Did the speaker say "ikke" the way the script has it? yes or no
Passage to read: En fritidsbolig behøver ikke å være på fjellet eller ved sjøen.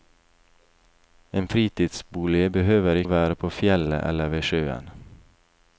no